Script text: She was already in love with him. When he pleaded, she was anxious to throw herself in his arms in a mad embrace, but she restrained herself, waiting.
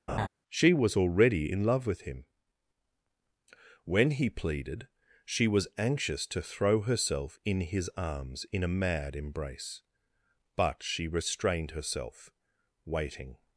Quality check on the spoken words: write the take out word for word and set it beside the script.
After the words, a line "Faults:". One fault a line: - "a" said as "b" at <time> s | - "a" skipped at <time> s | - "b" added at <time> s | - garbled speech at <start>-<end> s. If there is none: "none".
She was already in love with him. When he pleaded, she was anxious to throw herself in his arms in a mad embrace, but she restrained herself, waiting.
Faults:
none